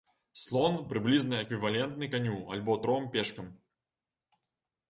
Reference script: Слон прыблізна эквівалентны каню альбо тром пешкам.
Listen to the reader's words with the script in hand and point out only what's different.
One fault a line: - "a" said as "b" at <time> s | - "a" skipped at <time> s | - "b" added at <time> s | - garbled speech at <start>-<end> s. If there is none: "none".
none